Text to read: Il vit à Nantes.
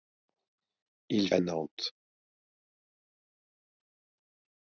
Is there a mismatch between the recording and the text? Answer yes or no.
yes